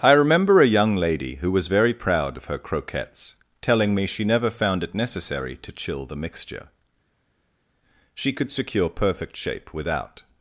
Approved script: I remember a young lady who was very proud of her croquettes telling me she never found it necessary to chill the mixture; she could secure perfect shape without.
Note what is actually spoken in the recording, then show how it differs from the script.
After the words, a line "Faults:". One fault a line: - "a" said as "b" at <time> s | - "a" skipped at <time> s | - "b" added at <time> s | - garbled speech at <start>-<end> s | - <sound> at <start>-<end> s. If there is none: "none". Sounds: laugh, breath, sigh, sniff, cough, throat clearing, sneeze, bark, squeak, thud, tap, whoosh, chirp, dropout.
I remember a young lady who was very proud of her croquettes telling me she never found it necessary to chill the mixture; she could secure perfect shape without.
Faults:
none